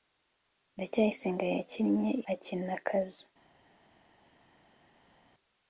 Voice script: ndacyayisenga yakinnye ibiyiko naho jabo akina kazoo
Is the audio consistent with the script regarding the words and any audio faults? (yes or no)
no